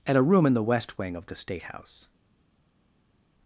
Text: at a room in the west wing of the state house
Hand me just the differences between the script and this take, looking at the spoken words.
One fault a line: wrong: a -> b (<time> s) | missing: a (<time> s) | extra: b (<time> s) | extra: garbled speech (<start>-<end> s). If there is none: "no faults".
no faults